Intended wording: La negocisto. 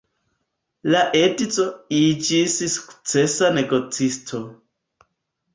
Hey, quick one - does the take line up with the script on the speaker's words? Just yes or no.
no